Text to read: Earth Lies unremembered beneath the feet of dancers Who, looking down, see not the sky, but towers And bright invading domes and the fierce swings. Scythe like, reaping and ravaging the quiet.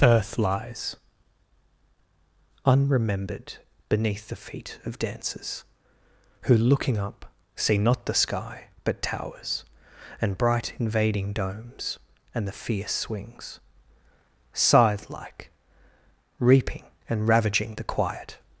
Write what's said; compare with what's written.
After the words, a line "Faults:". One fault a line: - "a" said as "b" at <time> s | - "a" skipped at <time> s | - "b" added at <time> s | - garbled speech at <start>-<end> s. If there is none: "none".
Earth Lies unremembered beneath the feet of dancers Who, looking up, see not the sky, but towers And bright invading domes and the fierce swings. Scythe like, reaping and ravaging the quiet.
Faults:
- "down" said as "up" at 7.0 s